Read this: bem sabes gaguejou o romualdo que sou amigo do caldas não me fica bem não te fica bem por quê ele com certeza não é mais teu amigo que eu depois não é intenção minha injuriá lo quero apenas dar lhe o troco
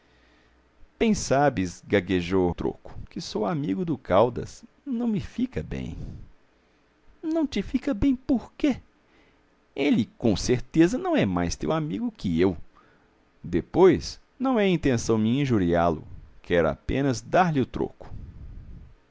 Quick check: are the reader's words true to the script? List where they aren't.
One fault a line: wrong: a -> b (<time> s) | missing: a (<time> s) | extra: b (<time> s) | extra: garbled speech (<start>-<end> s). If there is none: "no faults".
wrong: romualdo -> troco (2.5 s)